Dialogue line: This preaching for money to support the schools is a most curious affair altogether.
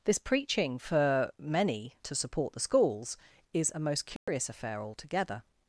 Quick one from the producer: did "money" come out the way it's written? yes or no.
no